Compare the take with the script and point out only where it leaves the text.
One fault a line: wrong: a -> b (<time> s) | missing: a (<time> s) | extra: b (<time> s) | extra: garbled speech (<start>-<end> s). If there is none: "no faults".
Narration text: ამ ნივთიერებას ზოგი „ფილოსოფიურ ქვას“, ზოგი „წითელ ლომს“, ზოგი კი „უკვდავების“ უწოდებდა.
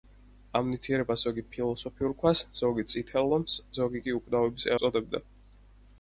no faults